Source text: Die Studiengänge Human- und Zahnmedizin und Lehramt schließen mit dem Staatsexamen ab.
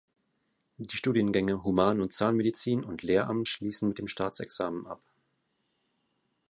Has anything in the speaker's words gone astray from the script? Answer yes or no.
no